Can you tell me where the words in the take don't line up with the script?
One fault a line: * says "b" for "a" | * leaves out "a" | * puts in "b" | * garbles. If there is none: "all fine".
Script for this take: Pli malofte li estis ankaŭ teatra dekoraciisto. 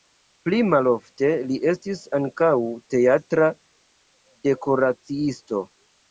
all fine